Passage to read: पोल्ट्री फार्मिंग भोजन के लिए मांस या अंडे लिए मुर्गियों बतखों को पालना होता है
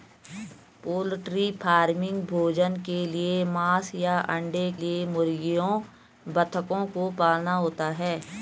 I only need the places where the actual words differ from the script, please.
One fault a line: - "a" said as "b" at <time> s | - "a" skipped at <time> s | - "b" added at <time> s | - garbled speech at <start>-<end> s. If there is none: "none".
none